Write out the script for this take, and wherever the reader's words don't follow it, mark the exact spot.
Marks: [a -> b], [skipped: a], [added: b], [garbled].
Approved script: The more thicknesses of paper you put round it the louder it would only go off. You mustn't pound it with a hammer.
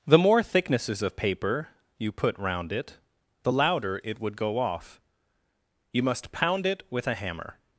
The more thicknesses of paper you put round it the louder it would [skipped: only] go off. You [mustn't -> must] pound it with a hammer.